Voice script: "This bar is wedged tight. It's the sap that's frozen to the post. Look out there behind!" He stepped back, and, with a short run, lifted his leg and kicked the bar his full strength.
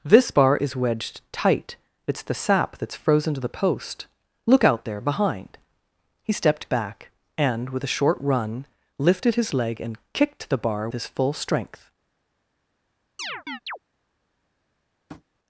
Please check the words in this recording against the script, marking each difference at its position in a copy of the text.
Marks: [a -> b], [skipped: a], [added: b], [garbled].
"This bar is wedged tight. It's the sap that's frozen to the post. Look out there behind!" He stepped back, and, with a short run, lifted his leg and kicked the bar his full strength.